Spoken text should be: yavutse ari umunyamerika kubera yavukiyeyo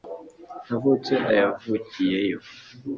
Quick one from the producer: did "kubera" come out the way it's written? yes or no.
no